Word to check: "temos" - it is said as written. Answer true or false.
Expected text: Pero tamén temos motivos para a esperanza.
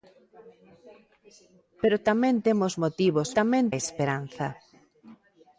true